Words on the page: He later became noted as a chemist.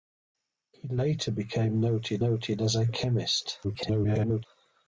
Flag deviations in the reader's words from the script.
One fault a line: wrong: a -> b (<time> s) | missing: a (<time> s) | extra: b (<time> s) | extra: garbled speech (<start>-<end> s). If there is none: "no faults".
extra: noted (2.2 s)
extra: garbled speech (3.6-4.5 s)